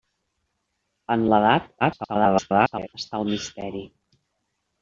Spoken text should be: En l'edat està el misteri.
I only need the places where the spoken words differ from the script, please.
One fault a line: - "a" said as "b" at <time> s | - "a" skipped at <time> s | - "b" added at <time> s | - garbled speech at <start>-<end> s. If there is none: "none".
- garbled speech at 1.8-2.9 s